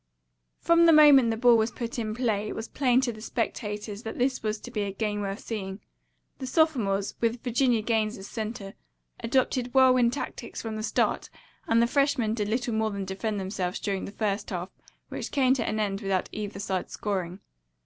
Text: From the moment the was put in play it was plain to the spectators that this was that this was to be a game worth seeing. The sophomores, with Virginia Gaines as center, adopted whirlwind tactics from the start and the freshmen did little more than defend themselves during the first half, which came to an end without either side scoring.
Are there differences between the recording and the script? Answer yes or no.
yes